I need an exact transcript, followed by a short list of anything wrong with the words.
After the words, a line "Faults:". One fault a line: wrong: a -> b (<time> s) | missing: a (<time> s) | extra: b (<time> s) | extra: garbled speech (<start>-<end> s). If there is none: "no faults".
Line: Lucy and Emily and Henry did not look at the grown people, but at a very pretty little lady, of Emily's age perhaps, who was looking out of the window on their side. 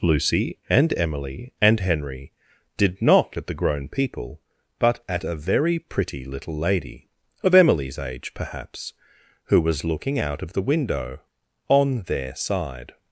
Lucy and Emily and Henry did not at the grown people, but at a very pretty little lady, of Emily's age perhaps, who was looking out of the window on their side.
Faults:
missing: look (3.4 s)